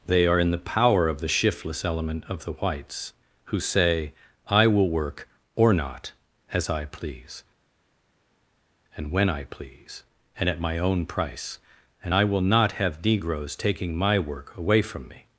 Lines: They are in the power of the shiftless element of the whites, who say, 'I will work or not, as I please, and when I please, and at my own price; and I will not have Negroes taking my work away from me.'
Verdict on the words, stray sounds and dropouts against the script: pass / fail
pass